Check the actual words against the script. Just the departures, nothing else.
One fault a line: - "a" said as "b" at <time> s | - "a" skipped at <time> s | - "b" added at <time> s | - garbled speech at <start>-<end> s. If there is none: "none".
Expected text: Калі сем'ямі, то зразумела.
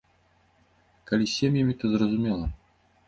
- "з" added at 1.2 s